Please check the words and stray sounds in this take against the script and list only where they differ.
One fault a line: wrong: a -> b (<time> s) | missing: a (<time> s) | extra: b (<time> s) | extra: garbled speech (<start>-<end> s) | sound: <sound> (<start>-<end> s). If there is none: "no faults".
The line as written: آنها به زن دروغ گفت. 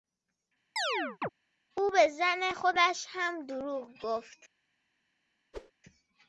sound: chirp (0.8-1.3 s)
wrong: آنها -> او (1.8 s)
extra: خودش هم (2.5 s)
sound: whoosh (5.5-5.7 s)